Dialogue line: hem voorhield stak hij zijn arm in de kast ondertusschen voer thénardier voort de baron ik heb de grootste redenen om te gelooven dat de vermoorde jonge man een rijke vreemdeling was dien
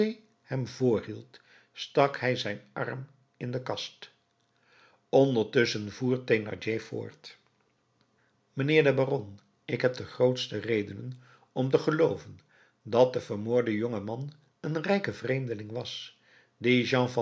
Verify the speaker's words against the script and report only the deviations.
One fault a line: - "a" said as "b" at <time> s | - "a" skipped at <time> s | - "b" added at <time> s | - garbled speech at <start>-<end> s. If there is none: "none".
- "mijnheer" added at 8.5 s